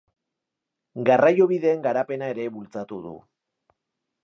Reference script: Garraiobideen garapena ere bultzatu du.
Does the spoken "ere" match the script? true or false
true